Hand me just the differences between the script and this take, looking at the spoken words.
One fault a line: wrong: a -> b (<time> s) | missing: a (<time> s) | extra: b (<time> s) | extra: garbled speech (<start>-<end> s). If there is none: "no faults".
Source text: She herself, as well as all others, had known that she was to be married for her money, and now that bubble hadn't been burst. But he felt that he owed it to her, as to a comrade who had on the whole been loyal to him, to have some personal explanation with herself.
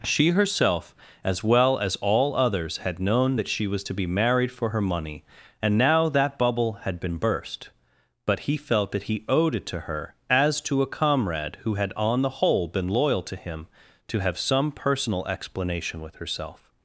wrong: hadn't -> had (6.8 s)